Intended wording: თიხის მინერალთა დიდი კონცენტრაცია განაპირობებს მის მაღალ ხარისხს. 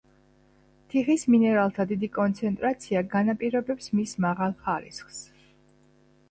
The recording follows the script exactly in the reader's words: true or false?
true